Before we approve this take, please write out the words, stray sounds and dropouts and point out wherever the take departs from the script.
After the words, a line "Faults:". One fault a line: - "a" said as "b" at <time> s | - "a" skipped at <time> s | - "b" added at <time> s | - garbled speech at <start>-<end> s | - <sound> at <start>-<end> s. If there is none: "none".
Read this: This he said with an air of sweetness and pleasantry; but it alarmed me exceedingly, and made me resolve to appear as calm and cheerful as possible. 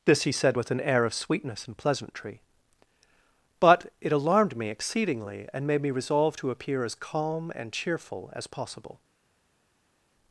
This he said with an air of sweetness and pleasantry; but it alarmed me exceedingly, and made me resolve to appear as calm and cheerful as possible.
Faults:
none